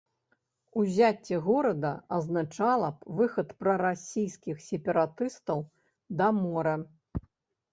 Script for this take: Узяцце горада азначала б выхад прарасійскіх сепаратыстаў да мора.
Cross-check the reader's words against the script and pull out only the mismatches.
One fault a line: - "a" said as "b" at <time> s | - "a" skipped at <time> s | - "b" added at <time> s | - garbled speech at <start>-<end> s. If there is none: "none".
none